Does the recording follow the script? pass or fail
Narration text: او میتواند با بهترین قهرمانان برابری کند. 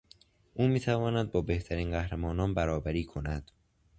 pass